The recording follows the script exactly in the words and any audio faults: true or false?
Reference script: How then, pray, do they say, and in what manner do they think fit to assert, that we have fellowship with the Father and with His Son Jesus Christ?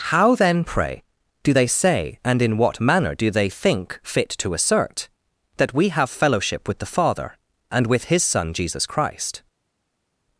true